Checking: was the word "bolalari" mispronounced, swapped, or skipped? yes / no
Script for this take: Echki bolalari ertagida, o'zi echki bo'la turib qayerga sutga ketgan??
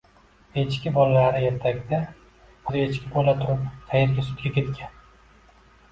no